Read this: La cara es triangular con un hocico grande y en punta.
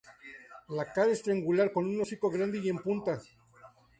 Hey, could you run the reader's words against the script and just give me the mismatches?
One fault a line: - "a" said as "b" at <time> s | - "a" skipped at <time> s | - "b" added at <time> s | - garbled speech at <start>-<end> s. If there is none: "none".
none